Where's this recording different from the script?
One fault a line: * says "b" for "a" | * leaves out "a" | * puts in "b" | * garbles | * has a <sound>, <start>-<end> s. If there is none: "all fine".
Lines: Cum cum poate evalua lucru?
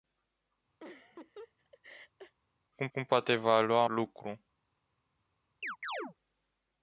* has a laugh, 0.8-2.4 s
* has a chirp, 5.6-6.1 s